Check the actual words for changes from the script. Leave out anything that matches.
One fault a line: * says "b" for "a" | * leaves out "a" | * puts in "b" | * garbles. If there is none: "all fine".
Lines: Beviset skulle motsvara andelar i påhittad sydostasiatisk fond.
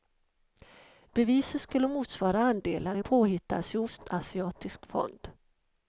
all fine